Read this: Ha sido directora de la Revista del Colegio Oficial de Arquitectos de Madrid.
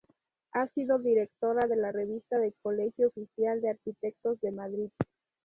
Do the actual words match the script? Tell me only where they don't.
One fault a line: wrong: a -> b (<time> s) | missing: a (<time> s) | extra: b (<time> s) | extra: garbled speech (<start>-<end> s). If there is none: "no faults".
no faults